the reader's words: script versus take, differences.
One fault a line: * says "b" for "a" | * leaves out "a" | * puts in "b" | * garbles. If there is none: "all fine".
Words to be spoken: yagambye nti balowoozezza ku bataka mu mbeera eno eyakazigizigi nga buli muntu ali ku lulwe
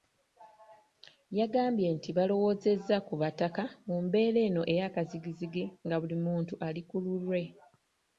all fine